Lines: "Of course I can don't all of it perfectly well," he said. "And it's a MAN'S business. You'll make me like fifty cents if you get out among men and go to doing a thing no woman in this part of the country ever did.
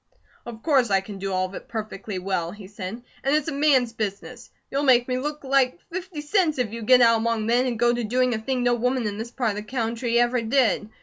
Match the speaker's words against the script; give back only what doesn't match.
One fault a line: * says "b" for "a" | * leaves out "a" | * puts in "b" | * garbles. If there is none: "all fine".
* says "do" for "don't"
* puts in "look"